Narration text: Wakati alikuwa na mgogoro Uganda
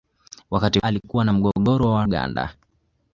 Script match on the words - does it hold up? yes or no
yes